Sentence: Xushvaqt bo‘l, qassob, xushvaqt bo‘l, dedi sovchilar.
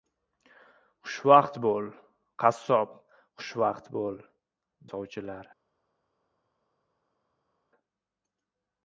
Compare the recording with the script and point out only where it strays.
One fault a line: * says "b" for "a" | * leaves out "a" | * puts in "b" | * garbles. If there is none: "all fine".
* leaves out "dedi"